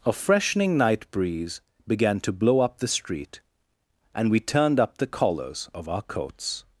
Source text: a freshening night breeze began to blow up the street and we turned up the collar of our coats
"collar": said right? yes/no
no